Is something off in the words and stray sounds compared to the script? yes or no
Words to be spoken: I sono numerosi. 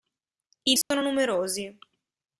yes